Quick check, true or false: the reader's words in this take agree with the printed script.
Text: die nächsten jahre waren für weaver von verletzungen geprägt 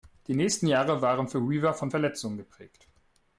true